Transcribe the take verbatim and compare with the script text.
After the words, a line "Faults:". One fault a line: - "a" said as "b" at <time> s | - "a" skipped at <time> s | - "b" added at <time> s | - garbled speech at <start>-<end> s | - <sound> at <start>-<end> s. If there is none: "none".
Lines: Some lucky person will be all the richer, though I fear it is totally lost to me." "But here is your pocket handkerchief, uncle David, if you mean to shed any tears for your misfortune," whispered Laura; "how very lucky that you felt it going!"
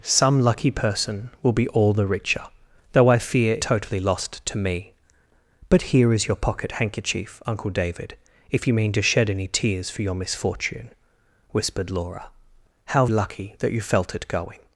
Some lucky person will be all the richer, though I fear totally lost to me." "But here is your pocket handkerchief, uncle David, if you mean to shed any tears for your misfortune," whispered Laura; "how lucky that you felt it going!"
Faults:
- "it is" skipped at 3.6 s
- "very" skipped at 13.1 s